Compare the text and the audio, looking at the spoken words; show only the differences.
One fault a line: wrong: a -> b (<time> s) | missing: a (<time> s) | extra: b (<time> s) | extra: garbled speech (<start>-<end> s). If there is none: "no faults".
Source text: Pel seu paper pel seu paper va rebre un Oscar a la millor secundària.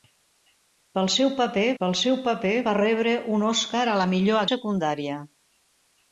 no faults